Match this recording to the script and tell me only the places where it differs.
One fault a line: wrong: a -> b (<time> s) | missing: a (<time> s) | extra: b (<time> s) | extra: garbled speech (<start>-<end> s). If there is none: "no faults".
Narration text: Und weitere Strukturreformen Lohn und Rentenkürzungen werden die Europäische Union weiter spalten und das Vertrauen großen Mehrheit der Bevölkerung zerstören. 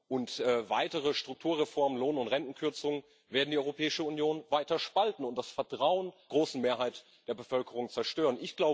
no faults